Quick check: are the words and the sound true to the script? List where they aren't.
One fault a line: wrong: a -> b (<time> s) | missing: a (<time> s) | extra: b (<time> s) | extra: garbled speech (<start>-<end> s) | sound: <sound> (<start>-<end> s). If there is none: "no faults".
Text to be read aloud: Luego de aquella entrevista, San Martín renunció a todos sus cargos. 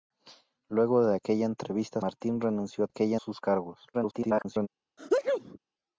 missing: San (2.0 s)
wrong: todos -> aquella (2.9 s)
extra: garbled speech (3.9-4.7 s)
sound: sneeze (5.0-5.6 s)